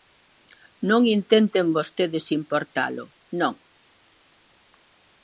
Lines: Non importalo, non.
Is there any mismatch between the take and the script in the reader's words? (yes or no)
yes